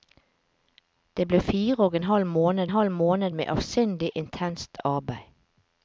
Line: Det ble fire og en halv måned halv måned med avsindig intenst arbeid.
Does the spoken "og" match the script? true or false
true